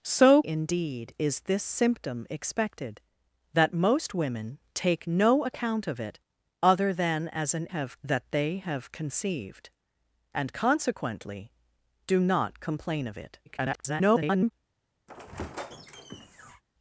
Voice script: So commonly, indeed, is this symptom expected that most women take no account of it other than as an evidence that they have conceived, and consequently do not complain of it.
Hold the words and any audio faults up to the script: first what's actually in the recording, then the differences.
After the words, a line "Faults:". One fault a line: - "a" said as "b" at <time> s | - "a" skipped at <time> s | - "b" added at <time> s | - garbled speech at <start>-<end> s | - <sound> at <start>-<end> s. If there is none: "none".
So indeed, is this symptom expected that most women take no account of it other than as an have that they have conceived, and consequently do not complain of it. [garbled]
Faults:
- "commonly" skipped at 0.4 s
- "evidence" said as "have" at 7.7 s
- garbled speech at 13.5-14.5 s
- squeak at 15.1-16.6 s